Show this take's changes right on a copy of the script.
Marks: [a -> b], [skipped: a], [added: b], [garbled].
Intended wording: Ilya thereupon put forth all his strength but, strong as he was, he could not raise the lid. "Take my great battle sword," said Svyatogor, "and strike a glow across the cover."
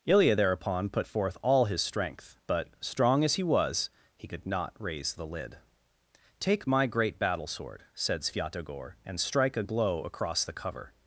Ilya thereupon put forth all his strength but, strong as he was, he could not raise the lid. "Take my great battle sword," said Svyatogor, "and strike a glow across the cover."